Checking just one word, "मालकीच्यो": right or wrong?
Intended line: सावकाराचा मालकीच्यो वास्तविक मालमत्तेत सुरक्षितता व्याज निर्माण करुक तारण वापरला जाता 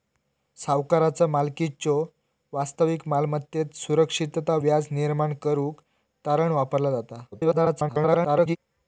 right